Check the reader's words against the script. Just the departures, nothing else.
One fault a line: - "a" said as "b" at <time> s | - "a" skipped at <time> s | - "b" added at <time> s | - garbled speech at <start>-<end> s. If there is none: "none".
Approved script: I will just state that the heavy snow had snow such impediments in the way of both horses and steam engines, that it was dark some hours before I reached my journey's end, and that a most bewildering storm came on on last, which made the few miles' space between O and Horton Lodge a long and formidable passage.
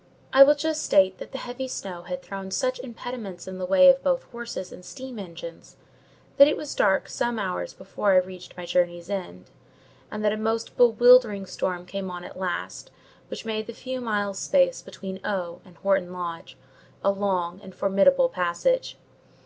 - "snow" said as "thrown" at 2.2 s
- "on" said as "at" at 12.2 s